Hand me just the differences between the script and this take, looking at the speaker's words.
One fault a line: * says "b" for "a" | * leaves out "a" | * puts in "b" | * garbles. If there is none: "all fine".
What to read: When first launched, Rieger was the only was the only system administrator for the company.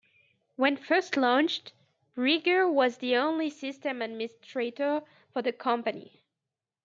* leaves out "was the only"